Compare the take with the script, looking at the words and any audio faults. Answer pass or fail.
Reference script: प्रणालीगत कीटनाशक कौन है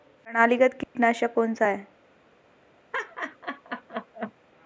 fail